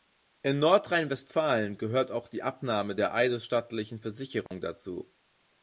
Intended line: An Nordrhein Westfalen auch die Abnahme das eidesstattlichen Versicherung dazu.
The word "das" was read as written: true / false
false